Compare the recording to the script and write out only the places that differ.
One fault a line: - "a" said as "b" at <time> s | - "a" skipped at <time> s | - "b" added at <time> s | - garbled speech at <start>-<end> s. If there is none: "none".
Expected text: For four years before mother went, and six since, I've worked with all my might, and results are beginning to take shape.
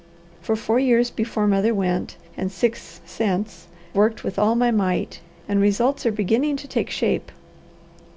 - "I've" skipped at 3.7 s